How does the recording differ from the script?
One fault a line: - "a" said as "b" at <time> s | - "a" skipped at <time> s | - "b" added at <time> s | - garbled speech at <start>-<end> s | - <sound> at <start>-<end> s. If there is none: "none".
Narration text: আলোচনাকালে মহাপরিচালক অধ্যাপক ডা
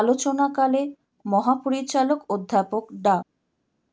none